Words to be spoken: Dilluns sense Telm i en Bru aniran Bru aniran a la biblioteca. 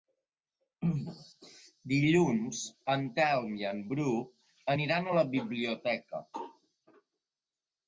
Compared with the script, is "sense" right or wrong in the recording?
wrong